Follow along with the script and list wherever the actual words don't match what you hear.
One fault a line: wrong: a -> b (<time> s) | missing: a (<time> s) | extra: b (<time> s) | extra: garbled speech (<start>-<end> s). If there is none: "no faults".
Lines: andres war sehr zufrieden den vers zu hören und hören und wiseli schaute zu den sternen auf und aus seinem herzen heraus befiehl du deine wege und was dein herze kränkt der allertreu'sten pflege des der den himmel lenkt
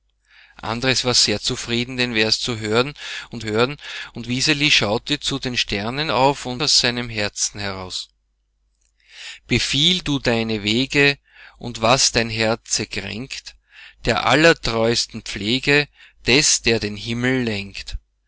no faults